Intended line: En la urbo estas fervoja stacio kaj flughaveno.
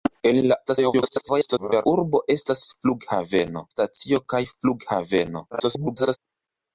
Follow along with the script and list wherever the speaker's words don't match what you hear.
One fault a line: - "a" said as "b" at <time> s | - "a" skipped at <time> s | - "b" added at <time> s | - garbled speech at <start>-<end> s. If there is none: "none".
- garbled speech at 0.7-1.9 s
- "fervoja" said as "flughaveno" at 2.7 s
- garbled speech at 5.5-6.2 s